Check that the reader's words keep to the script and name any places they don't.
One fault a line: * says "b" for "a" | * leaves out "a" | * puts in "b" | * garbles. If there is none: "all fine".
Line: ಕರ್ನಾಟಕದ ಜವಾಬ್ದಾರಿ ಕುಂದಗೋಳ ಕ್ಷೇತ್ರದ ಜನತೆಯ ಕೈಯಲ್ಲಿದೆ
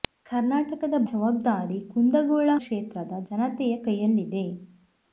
all fine